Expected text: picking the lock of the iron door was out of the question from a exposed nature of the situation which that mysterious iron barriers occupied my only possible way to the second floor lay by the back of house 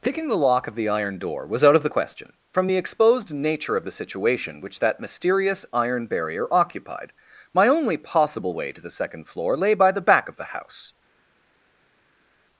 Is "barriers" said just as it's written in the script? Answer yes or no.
no